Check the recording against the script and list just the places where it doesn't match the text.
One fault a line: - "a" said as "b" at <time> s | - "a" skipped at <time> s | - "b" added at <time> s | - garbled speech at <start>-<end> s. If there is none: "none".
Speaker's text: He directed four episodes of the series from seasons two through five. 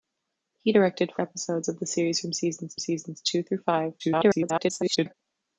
- "four" skipped at 1.1 s
- "seasons" added at 2.8 s
- garbled speech at 4.0-5.1 s